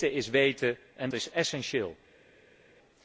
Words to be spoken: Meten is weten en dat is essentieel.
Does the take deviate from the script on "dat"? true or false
true